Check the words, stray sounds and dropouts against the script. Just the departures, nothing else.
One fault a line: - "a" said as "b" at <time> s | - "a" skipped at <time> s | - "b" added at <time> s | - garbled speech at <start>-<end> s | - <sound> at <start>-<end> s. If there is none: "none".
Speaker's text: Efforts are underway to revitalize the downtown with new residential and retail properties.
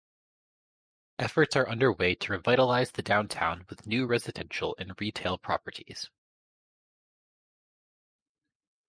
none